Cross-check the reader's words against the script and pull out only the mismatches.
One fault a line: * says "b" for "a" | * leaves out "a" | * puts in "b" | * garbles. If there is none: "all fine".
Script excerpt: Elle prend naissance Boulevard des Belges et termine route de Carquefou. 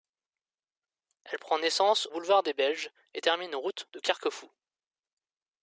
all fine